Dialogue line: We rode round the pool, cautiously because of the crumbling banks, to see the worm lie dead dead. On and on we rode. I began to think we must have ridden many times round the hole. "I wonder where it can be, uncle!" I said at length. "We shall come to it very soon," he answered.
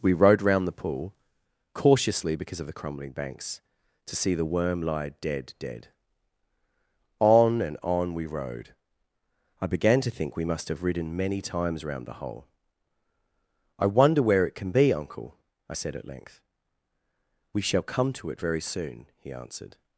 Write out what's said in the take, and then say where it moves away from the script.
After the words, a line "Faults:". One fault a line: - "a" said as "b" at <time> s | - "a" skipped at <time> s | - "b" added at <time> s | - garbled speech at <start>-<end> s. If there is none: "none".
We rode round the pool, cautiously because of the crumbling banks, to see the worm lie dead dead. On and on we rode. I began to think we must have ridden many times round the hole. "I wonder where it can be, uncle!" I said at length. "We shall come to it very soon," he answered.
Faults:
none